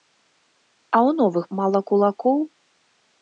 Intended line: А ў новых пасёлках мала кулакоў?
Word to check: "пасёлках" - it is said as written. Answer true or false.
false